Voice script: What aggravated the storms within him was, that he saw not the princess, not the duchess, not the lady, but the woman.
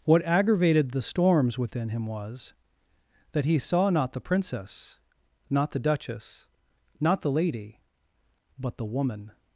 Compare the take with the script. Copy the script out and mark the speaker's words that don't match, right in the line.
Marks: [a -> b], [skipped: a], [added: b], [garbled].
What aggravated the storms within him was, that he saw not the princess, not the duchess, not the lady, but the woman.